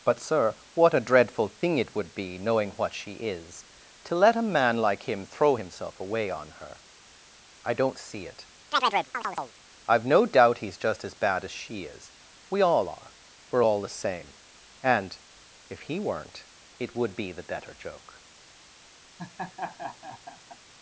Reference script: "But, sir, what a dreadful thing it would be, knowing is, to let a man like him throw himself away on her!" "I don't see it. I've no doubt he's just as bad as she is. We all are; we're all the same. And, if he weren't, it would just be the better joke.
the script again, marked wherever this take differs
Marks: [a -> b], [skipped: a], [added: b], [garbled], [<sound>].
"But, sir, what a dreadful thing it would be, knowing [added: what she] is, to let a man like him throw himself away on her!" "I don't see it. [chirp] I've no doubt he's just as bad as she is. We all are; we're all the same. And, if he weren't, it would [skipped: just] be the better joke. [laugh]